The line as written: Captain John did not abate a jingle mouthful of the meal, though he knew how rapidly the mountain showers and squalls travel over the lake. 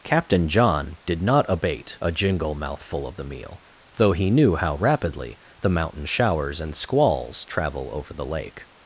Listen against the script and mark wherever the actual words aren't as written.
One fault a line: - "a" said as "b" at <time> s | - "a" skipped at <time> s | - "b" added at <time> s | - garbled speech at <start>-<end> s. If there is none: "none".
none